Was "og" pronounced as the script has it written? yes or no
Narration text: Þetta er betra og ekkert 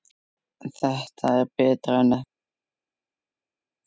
no